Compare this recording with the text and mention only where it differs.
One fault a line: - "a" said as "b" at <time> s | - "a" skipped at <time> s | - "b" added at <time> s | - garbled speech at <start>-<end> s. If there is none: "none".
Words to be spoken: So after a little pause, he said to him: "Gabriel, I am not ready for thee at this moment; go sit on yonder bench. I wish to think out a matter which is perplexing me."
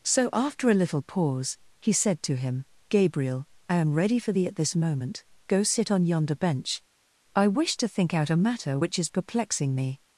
- "not" skipped at 3.9 s